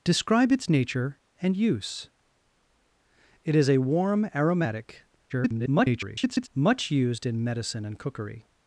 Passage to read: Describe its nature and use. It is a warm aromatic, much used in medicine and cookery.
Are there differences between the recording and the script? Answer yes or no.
yes